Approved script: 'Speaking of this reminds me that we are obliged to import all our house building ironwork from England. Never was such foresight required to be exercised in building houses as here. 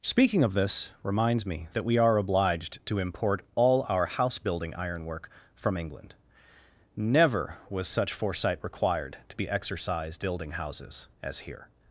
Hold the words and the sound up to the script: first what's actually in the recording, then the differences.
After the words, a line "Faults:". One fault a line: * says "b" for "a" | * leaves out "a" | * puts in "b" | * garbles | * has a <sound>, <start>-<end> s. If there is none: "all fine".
'Speaking of this reminds me that we are obliged to import all our house building ironwork from England. Never was such foresight required to be exercised building houses as here.
Faults:
* leaves out "in"